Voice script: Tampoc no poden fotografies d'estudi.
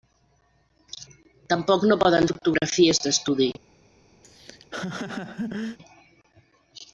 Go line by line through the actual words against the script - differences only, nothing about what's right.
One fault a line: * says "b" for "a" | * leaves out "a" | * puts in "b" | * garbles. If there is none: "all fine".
all fine